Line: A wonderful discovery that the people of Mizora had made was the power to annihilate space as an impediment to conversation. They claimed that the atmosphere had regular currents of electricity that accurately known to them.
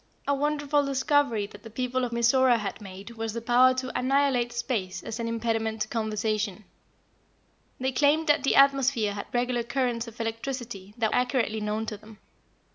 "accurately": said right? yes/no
yes